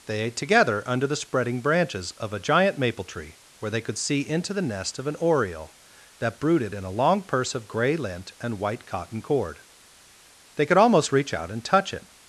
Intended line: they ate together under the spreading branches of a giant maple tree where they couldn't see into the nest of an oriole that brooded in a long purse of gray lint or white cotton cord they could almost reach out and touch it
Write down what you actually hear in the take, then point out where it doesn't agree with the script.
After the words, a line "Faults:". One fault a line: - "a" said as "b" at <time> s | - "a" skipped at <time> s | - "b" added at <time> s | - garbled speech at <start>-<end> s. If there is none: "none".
they ate together under the spreading branches of a giant maple tree where they could see into the nest of an oriole that brooded in a long purse of gray lint and white cotton cord they could almost reach out and touch it
Faults:
- "couldn't" said as "could" at 3.8 s
- "or" said as "and" at 8.4 s